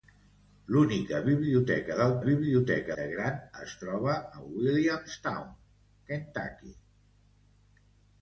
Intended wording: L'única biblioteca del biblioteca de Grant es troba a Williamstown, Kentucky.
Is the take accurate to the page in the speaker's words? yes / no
yes